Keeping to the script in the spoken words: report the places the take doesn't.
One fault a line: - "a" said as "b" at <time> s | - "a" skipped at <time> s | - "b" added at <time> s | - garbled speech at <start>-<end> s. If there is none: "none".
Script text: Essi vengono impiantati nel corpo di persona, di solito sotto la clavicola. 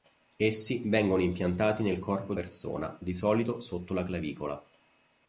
none